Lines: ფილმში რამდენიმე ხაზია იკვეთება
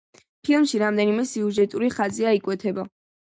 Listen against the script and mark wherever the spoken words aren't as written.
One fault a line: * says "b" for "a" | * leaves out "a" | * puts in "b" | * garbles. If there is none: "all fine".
* puts in "სიუჟეტური"